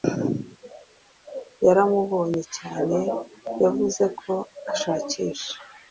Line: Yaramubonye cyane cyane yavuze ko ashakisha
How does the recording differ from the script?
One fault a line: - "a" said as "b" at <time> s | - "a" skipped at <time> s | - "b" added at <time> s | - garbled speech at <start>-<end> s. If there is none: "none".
- "cyane" skipped at 3.0 s